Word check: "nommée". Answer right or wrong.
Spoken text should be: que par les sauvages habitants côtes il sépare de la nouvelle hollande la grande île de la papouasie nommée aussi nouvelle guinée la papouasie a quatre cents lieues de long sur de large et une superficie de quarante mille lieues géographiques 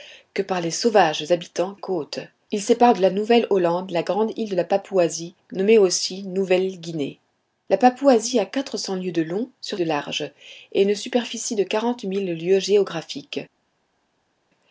right